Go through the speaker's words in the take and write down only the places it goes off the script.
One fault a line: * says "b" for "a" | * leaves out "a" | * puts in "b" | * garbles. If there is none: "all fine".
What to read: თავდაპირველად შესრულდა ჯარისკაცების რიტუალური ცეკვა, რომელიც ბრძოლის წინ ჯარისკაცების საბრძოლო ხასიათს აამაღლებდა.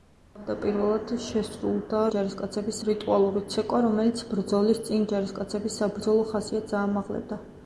all fine